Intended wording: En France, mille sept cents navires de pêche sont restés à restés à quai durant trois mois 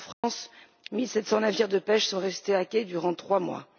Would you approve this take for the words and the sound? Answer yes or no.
no